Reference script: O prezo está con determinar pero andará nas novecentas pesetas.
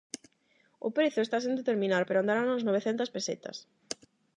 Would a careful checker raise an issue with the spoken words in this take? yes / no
yes